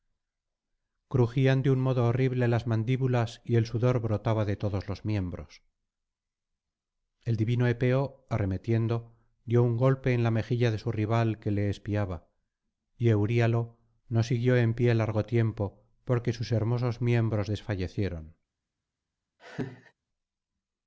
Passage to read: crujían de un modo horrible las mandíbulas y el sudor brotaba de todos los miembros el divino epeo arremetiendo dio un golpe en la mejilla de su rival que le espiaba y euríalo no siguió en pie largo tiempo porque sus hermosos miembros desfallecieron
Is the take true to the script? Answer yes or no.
yes